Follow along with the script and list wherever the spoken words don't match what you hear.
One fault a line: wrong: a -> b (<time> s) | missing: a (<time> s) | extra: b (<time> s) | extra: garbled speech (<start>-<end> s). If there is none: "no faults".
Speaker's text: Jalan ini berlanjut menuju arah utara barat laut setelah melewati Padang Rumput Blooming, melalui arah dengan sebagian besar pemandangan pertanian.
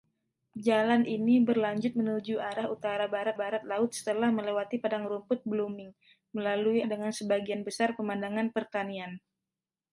extra: barat (3.4 s)
missing: arah (6.8 s)